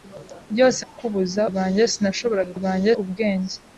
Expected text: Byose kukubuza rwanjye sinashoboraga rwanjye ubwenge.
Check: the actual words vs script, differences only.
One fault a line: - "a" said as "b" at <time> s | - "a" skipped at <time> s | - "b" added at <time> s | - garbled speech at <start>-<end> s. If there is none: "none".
none